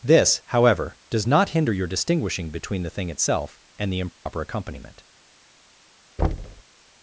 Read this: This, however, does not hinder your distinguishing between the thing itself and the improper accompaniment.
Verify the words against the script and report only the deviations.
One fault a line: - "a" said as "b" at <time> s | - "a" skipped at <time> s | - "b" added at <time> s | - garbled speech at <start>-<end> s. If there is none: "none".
none